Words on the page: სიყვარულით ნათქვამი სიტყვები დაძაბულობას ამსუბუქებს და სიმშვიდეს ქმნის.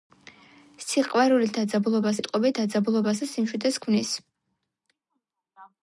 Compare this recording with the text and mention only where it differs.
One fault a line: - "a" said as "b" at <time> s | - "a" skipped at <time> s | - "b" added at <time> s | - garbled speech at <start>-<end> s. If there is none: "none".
- "ნათქვამი" said as "დაძაბულობას" at 1.6 s
- "ამსუბუქებს" skipped at 3.2 s